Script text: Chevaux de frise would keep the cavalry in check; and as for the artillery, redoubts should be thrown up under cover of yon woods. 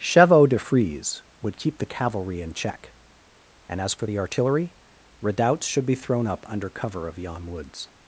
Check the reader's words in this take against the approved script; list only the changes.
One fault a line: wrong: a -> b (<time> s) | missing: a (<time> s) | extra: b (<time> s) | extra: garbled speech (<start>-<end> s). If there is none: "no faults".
no faults